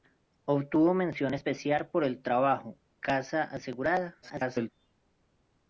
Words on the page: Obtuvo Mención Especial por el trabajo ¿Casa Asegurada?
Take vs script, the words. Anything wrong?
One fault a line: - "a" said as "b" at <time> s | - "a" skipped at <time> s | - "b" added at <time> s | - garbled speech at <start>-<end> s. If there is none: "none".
- garbled speech at 4.2-4.7 s